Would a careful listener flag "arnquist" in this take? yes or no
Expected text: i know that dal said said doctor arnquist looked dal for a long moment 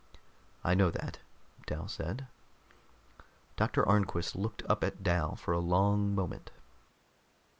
no